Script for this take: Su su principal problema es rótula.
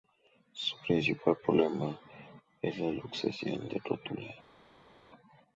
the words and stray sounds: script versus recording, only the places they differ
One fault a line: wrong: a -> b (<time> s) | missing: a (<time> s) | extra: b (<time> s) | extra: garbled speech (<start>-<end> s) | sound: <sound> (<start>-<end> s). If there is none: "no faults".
missing: su (0.8 s)
extra: la luxación de (2.8 s)